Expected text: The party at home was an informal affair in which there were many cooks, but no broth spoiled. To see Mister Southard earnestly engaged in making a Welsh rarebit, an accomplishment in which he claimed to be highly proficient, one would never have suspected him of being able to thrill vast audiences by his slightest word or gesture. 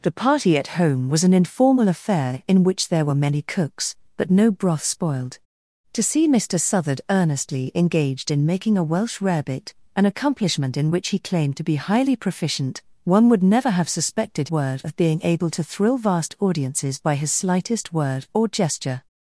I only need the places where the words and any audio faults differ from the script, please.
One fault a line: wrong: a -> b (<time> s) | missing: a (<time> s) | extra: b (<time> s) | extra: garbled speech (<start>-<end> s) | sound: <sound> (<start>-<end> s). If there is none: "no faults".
wrong: him -> word (14.5 s)